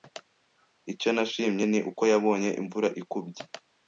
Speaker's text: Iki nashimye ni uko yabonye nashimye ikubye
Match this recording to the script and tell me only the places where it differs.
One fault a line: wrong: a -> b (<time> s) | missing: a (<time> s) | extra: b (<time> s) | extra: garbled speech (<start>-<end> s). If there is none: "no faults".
wrong: Iki -> Icyo (0.9 s)
wrong: nashimye -> imvura (2.6 s)